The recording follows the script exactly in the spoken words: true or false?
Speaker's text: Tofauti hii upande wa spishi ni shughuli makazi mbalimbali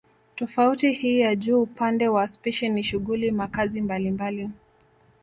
false